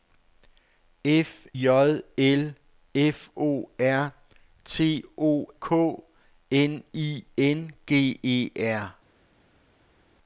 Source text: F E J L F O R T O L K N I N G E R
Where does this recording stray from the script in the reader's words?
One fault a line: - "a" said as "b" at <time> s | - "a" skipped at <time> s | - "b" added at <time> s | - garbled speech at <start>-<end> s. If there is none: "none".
- "E" skipped at 1.5 s
- "L" skipped at 5.5 s